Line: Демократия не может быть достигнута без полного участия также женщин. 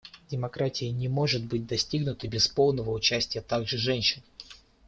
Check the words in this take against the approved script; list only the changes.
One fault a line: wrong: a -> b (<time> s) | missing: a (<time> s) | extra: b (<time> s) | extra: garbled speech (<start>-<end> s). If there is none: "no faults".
no faults